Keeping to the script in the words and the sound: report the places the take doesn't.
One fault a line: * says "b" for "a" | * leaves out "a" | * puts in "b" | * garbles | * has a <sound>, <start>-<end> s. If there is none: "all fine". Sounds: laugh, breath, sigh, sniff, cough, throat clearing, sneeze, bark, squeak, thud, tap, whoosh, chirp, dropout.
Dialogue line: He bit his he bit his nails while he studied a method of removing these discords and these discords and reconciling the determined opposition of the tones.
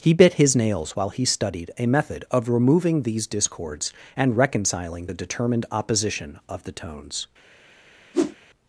* leaves out "he bit his"
* leaves out "these discords and"
* has a whoosh, 8.1-8.4 s